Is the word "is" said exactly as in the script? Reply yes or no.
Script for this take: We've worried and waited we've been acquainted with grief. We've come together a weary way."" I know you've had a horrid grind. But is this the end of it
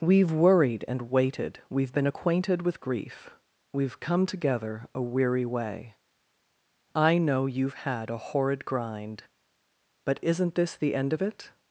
no